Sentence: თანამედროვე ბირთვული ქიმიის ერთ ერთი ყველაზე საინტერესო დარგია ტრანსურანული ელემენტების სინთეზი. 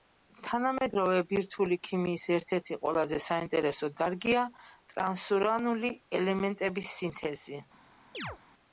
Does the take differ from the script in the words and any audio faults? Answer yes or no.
yes